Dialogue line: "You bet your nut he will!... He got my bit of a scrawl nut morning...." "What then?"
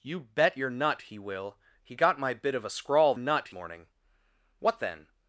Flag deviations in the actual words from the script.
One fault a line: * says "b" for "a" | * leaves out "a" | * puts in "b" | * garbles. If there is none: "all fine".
all fine